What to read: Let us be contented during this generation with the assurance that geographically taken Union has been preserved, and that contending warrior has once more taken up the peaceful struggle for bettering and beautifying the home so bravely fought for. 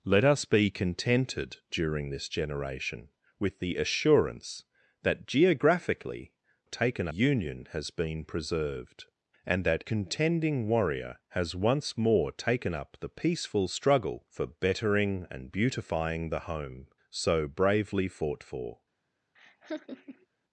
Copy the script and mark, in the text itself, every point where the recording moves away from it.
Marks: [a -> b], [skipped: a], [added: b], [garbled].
Let us be contented during this generation with the assurance that geographically taken Union has been preserved, and that contending warrior has once more taken up the peaceful struggle for bettering and beautifying the home so bravely fought for.